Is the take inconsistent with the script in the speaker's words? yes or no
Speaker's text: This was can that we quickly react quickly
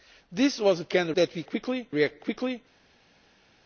no